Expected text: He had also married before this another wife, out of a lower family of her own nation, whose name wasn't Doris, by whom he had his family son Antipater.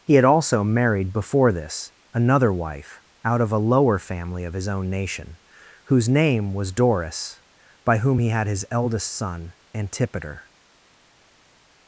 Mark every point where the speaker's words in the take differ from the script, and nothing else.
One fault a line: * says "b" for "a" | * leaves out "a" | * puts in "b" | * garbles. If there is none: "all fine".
* says "his" for "her"
* says "was" for "wasn't"
* says "eldest" for "family"